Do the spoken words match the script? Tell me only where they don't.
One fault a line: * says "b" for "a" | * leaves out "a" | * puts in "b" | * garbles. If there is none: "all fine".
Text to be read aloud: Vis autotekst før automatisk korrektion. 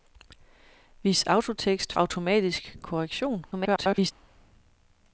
* leaves out "før"
* garbles